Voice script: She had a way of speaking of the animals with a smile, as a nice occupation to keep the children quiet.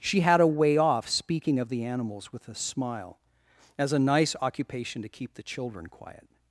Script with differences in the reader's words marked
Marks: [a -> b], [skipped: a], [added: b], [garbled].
She had a way [of -> off] speaking of the animals with a smile, as a nice occupation to keep the children quiet.